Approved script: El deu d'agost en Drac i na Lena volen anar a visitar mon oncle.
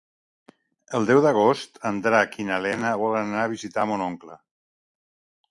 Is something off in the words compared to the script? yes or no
no